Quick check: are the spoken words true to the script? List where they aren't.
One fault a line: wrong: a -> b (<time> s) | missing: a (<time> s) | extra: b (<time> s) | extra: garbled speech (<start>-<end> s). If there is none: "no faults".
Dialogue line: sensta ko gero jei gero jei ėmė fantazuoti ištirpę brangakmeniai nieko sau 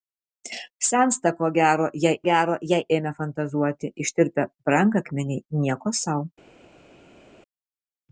no faults